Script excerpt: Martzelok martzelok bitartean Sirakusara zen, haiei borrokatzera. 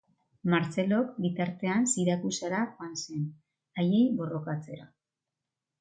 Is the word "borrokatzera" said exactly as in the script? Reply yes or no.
yes